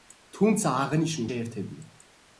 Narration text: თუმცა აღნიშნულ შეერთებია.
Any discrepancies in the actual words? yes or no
no